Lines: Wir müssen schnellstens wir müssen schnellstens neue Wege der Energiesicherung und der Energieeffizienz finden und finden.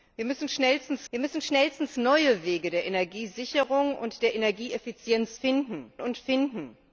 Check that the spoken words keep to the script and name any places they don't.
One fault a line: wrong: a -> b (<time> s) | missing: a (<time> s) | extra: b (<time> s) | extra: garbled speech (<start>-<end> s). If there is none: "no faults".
no faults